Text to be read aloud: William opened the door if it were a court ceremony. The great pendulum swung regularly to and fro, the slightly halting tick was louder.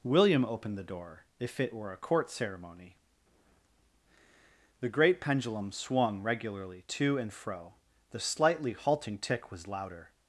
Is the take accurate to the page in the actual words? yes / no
yes